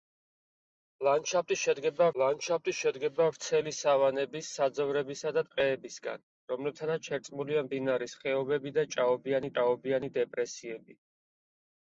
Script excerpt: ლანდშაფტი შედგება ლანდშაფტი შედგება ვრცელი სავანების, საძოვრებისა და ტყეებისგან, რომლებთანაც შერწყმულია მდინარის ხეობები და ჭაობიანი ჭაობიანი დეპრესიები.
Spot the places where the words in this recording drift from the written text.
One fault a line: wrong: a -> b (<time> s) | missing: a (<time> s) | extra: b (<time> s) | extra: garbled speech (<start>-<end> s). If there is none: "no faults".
no faults